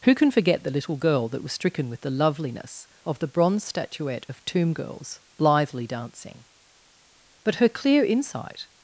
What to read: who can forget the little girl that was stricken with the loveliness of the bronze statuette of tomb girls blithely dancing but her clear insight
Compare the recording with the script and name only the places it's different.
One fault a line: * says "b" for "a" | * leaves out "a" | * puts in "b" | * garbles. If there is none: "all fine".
all fine